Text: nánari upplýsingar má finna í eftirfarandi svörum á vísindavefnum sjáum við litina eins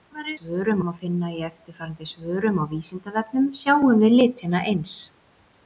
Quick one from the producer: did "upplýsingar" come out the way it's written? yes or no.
no